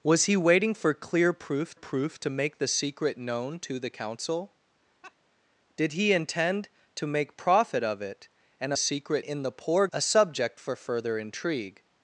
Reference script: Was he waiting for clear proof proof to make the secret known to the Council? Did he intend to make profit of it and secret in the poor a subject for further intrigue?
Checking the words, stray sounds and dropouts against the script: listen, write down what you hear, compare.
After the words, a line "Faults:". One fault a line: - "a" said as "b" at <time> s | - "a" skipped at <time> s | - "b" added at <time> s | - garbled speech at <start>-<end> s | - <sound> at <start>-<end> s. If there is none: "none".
Was he waiting for clear proof proof to make the secret known to the Council? Did he intend to make profit of it and secret in the poor a subject for further intrigue?
Faults:
- laugh at 5.0-5.2 s